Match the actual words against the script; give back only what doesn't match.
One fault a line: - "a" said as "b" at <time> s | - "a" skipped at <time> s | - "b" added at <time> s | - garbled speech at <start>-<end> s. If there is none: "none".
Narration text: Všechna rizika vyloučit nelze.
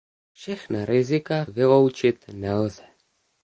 none